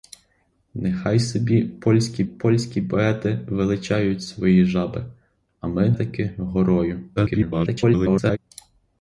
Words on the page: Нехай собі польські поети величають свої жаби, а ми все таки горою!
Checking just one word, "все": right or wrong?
wrong